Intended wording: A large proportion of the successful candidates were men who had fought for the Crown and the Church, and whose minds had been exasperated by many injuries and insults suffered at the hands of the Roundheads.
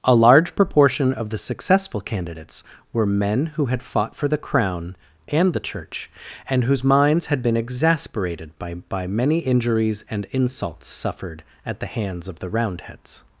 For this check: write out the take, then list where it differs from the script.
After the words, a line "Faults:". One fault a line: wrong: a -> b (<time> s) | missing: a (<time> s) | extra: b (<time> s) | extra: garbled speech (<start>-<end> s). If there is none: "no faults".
A large proportion of the successful candidates were men who had fought for the Crown and the Church, and whose minds had been exasperated by by many injuries and insults suffered at the hands of the Roundheads.
Faults:
extra: by (8.7 s)